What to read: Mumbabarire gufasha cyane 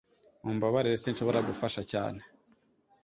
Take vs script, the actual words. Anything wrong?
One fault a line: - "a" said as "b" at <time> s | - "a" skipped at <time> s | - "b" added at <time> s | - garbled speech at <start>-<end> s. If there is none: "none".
- "sinshobora" added at 1.0 s